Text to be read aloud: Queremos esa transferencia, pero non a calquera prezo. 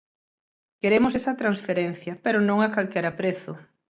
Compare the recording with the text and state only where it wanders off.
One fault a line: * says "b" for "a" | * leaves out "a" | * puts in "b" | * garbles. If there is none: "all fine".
all fine